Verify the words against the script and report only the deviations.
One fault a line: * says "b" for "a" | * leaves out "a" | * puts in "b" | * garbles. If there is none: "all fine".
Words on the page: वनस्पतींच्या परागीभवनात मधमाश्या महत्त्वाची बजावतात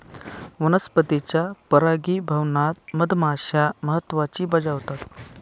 all fine